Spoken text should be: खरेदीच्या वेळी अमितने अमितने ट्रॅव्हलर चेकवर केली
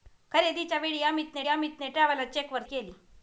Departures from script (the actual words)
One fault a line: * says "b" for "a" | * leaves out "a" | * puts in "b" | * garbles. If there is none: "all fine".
all fine